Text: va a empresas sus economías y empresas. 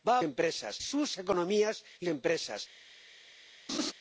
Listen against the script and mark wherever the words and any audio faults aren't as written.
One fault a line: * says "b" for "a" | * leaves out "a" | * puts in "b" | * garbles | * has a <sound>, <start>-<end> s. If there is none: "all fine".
* has a laugh, 3.7-3.9 s